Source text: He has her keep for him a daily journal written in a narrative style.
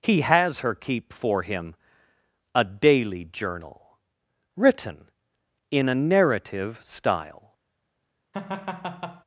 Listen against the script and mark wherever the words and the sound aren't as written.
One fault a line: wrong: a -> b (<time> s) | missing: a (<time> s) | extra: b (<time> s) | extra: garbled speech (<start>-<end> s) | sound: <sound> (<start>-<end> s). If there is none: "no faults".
sound: laugh (8.3-9.2 s)